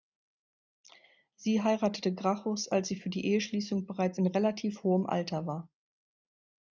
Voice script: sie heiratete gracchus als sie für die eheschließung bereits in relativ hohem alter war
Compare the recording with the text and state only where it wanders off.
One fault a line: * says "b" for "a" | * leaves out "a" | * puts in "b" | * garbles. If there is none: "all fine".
all fine